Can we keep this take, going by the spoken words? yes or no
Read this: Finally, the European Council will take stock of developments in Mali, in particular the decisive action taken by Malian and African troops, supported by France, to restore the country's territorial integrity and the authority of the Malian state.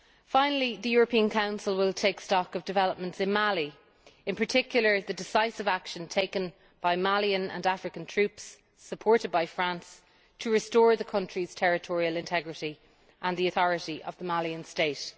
yes